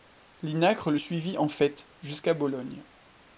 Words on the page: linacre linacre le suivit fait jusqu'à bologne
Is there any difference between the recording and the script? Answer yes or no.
yes